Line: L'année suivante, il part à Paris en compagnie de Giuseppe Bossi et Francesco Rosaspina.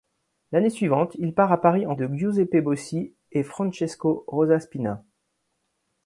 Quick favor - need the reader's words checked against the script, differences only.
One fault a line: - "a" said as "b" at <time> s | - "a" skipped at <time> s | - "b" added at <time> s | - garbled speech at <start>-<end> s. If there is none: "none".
- "compagnie" skipped at 1.9 s